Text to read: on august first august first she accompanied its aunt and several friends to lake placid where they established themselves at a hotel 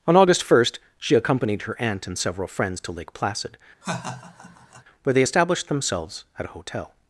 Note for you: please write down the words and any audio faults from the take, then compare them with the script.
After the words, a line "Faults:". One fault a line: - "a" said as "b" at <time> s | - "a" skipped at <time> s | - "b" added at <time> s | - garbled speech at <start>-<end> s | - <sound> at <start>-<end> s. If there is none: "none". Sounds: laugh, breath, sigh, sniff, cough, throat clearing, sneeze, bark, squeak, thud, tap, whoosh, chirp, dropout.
on august first she accompanied her aunt and several friends to lake placid where they established themselves at a hotel
Faults:
- "august first" skipped at 0.8 s
- "its" said as "her" at 1.6 s
- laugh at 3.8-4.8 s